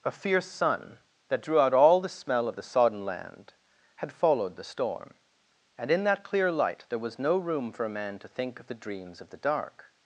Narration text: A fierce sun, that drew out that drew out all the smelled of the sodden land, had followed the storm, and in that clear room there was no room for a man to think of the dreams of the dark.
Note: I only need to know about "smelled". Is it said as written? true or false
false